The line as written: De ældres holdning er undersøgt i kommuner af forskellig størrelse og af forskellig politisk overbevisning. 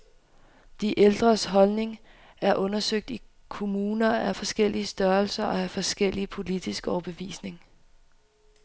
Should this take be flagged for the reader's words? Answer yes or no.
no